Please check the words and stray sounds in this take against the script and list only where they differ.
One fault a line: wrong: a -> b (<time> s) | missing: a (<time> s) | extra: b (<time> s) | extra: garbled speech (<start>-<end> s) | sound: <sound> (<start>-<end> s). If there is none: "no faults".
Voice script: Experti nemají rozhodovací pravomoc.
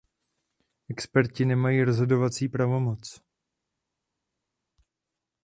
no faults